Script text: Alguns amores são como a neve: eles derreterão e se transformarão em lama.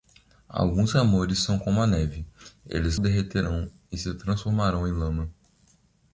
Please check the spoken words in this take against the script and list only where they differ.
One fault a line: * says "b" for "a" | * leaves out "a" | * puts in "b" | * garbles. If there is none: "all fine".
all fine